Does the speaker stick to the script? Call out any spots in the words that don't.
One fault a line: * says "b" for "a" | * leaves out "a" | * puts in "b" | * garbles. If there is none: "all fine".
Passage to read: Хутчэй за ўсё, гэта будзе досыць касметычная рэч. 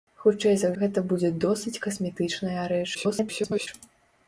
* leaves out "ўсё"
* garbles